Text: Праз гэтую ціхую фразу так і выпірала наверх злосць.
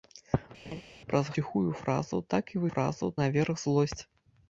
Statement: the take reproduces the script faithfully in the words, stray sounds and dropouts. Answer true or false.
false